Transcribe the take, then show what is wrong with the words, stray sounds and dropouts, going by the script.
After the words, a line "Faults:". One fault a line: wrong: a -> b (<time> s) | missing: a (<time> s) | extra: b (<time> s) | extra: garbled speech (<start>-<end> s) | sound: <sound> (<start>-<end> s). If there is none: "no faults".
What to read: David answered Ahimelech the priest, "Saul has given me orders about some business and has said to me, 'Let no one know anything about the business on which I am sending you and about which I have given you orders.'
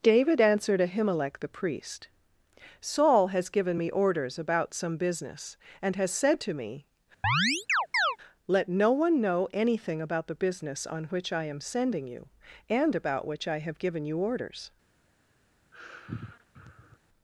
David answered Ahimelech the priest, "Saul has given me orders about some business and has said to me, 'Let no one know anything about the business on which I am sending you and about which I have given you orders.'
Faults:
sound: chirp (7.2-8.2 s)
sound: sigh (15.7-17.0 s)